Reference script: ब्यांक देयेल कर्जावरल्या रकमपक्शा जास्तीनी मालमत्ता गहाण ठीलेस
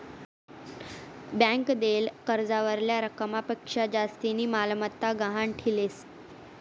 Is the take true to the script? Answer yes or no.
yes